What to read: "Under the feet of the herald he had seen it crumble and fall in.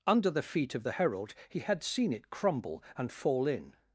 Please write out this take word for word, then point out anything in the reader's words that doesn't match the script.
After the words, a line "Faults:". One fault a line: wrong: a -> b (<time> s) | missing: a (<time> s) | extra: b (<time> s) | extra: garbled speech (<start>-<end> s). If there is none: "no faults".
"Under the feet of the herald he had seen it crumble and fall in.
Faults:
no faults